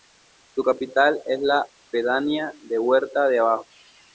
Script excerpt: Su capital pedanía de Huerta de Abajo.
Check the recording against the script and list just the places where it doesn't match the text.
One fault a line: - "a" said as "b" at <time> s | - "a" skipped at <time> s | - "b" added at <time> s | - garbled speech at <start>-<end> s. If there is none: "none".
- "es la" added at 1.2 s